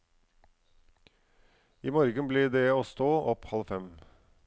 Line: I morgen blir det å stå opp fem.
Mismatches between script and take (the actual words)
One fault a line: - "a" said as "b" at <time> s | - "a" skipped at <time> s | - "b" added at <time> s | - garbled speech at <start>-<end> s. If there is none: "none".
- "halv" added at 3.5 s